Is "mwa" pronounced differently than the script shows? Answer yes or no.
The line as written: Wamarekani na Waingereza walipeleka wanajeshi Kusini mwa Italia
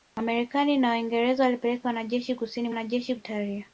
yes